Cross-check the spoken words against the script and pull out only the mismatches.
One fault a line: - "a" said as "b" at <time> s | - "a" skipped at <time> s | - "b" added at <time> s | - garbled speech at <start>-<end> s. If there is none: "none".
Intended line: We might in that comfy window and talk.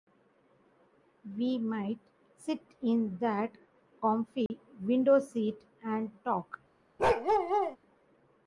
- "sit" added at 2.4 s
- "seat" added at 5.2 s